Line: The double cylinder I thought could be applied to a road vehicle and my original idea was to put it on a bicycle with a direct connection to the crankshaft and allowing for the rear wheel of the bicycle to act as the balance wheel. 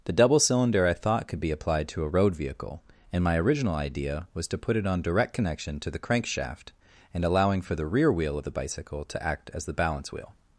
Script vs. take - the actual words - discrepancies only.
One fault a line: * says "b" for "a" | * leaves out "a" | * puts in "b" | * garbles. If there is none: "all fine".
* leaves out "a bicycle with a"